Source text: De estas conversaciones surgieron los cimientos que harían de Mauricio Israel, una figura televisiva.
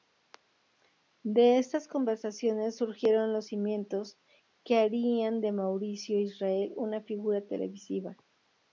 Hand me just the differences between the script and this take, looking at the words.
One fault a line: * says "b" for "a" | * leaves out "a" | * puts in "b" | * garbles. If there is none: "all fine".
all fine